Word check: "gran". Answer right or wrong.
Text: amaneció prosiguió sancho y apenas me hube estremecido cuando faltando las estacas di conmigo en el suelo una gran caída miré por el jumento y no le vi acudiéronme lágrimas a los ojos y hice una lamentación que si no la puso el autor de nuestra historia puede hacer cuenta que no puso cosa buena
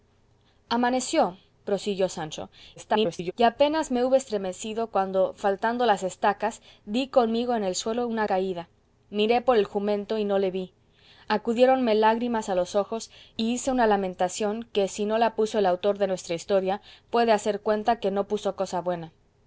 wrong